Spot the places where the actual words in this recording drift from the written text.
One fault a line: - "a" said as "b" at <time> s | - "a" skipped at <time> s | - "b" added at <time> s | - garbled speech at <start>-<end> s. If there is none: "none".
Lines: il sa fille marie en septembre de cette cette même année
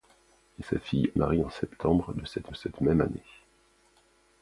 none